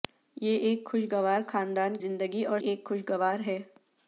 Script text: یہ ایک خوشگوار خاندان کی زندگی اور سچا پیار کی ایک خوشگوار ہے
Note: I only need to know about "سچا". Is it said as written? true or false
false